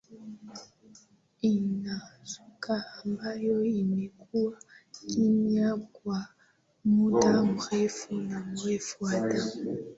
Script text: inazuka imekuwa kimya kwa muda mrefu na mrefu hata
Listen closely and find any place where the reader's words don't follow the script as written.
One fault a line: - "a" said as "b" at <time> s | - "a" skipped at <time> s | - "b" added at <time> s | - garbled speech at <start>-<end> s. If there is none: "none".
- "ambayo" added at 3.0 s